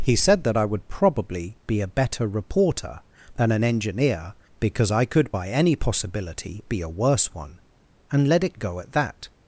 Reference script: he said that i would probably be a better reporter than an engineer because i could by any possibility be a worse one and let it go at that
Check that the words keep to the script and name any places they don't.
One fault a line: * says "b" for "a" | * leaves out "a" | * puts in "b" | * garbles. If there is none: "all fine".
all fine